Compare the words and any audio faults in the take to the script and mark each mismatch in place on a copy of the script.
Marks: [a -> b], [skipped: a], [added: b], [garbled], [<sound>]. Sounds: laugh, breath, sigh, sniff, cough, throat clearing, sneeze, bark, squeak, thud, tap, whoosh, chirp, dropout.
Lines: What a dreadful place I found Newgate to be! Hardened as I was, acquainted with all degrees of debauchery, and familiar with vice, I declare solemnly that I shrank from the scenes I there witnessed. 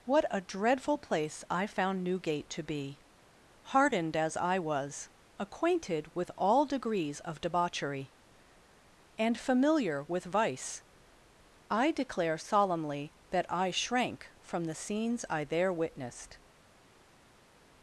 What a dreadful place I found Newgate to be! Hardened as I was, acquainted with all degrees of debauchery, and familiar with vice, I declare solemnly that I shrank from the scenes I there witnessed.